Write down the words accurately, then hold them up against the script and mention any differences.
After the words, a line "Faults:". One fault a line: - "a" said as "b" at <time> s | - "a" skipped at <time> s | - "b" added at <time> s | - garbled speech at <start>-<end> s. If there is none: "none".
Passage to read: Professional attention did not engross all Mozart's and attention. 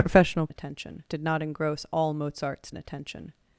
Professional attention did not engross all Mozart's and attention.
Faults:
none